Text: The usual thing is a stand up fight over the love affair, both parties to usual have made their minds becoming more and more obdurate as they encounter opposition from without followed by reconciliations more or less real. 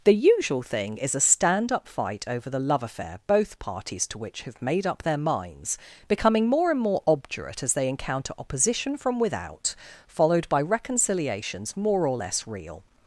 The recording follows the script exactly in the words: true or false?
false